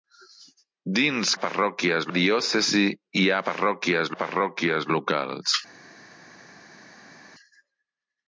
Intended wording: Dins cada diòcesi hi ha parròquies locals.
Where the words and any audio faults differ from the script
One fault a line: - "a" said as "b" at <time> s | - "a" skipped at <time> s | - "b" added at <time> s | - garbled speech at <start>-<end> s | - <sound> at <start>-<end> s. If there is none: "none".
- "cada" said as "parròquies" at 1.4 s
- "parròquies" added at 4.2 s